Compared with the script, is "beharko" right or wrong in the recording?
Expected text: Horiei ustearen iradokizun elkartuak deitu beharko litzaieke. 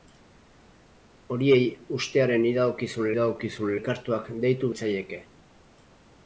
wrong